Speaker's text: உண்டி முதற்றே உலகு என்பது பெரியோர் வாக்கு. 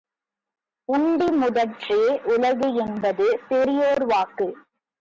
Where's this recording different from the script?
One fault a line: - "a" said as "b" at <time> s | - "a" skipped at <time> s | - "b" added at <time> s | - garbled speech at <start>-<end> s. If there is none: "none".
none